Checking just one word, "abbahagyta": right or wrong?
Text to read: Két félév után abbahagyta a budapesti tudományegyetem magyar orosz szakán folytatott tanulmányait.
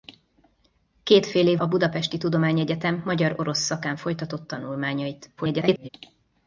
wrong